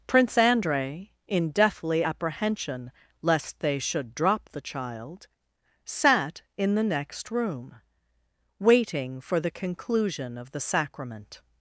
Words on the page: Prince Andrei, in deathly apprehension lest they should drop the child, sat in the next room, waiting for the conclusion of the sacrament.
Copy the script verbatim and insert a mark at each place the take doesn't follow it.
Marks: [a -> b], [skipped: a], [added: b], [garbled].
Prince Andrei, in deathly apprehension lest they should drop the child, sat in the next room, waiting for the conclusion of the sacrament.